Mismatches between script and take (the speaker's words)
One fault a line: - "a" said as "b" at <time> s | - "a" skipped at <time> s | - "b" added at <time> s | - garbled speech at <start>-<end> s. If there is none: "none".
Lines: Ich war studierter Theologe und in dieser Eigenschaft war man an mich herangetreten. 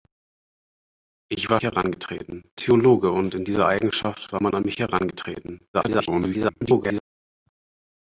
- "studierter" said as "herangetreten" at 1.6 s
- garbled speech at 5.7-7.0 s